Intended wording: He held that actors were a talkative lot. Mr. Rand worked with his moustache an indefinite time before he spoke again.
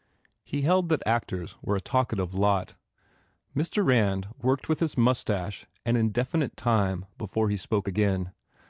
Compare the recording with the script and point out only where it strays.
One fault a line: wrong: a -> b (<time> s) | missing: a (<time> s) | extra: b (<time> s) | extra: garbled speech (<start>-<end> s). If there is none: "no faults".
no faults